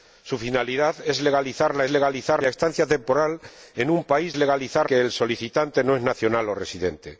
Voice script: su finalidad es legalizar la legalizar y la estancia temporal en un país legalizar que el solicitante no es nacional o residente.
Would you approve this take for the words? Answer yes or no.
yes